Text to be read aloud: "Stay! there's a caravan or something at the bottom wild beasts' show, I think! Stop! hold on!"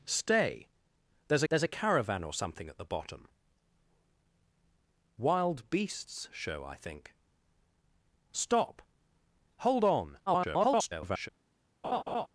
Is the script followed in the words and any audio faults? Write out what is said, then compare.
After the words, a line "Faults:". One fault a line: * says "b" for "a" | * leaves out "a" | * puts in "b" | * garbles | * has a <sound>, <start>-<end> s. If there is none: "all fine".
"Stay! there's there's a caravan or something at the bottom wild beasts' show, I think! Stop! hold on!" [garbled]
Faults:
* puts in "there's"
* garbles
* has a laugh, 11.8-12.3 s